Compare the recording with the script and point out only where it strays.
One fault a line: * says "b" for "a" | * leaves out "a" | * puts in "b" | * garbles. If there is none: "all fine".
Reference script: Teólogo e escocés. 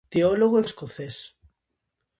all fine